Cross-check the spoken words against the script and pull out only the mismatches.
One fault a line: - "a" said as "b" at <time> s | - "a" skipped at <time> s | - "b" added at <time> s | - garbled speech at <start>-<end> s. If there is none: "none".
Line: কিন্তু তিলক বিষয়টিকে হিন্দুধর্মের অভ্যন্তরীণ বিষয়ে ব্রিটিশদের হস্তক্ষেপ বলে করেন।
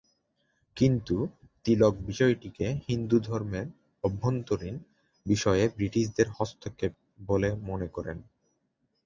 - "মনে" added at 7.7 s